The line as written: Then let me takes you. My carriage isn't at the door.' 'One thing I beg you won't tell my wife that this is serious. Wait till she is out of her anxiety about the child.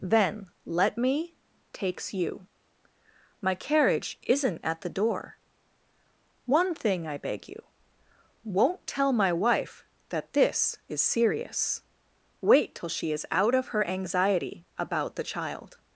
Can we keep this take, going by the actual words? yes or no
yes